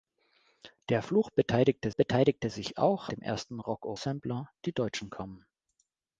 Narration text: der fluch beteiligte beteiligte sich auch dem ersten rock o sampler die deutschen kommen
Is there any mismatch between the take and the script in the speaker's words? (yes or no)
no